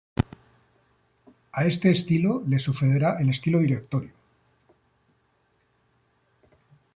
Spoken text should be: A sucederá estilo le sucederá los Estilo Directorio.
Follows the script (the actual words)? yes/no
no